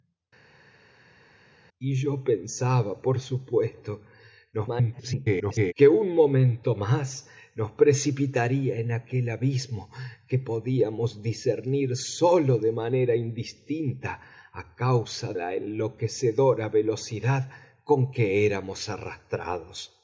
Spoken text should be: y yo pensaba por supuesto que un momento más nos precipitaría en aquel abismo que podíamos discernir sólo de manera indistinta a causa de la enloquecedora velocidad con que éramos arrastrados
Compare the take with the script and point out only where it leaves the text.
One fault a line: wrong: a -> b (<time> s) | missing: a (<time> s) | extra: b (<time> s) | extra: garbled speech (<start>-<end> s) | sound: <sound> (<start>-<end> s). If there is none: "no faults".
extra: garbled speech (4.5-5.7 s)
missing: de (15.3 s)